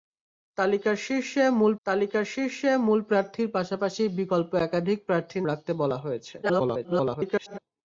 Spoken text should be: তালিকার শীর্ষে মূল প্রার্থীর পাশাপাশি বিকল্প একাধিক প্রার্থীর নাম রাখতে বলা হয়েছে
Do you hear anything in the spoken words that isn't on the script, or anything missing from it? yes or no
yes